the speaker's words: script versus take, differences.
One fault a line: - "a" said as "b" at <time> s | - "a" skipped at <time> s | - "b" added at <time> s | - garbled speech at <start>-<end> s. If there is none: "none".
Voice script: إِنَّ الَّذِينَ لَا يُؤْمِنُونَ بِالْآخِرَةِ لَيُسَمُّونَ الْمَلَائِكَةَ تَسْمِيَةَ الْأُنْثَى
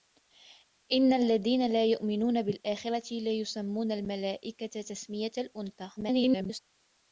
- garbled speech at 6.0-6.6 s